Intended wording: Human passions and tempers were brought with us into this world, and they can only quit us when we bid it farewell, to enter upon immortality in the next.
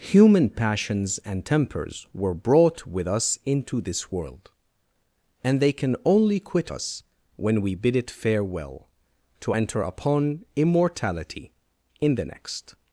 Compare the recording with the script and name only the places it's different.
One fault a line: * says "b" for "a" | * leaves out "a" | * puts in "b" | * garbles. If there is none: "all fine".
all fine